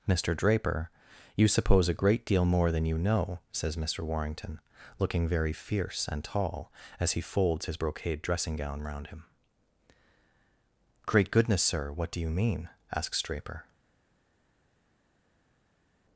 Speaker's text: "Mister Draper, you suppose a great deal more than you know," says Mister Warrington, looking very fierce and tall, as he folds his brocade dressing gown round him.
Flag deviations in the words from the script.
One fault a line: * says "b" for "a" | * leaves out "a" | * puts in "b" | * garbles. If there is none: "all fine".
* puts in "Great goodness sir what do you mean asks Draper"